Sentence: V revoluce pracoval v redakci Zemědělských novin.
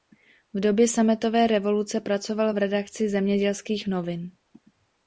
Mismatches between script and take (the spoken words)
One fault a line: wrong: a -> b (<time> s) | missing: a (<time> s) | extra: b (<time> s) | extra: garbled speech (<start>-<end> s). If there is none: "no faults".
extra: době Sametové (0.6 s)